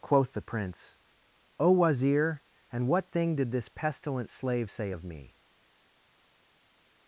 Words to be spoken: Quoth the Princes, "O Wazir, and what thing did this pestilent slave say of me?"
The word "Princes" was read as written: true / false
false